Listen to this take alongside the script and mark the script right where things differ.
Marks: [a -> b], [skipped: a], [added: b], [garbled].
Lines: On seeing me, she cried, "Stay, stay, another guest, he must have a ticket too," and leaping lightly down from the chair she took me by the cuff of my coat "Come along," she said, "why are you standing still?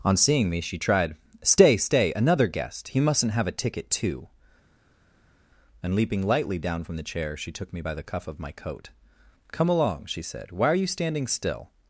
On seeing me, she [cried, -> tried] "Stay, stay, another guest, he [must -> mustn't] have a ticket too," and leaping lightly down from the chair she took me by the cuff of my coat "Come along," she said, "why are you standing still?